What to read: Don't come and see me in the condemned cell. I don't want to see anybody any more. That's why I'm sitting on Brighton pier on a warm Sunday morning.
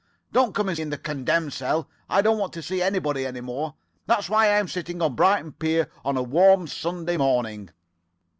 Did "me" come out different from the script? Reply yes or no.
yes